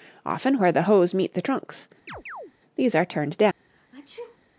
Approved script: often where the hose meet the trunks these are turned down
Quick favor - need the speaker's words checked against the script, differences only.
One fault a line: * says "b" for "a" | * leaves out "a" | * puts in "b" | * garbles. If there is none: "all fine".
all fine